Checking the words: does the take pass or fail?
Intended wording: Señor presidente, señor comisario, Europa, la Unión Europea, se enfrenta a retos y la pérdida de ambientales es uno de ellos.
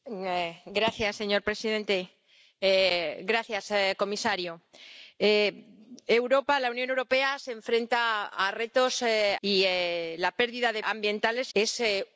pass